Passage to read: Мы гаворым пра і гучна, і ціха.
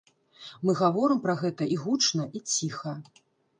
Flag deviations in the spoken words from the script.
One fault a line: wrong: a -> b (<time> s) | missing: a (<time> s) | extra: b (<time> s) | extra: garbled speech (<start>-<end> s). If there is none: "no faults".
extra: гэта (1.4 s)